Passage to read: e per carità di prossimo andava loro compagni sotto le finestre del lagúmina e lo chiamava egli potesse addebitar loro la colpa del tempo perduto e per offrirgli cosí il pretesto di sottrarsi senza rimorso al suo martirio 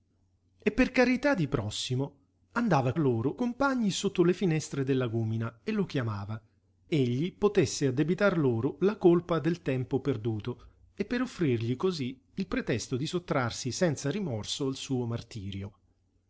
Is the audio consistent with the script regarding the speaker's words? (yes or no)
yes